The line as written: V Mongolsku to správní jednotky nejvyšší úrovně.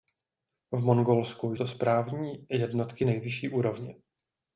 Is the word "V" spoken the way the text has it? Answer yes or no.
yes